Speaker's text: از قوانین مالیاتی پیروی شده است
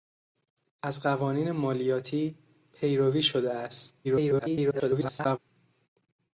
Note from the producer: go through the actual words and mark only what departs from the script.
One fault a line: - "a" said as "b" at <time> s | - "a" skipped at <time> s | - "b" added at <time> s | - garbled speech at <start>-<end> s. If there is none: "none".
- garbled speech at 4.0-5.4 s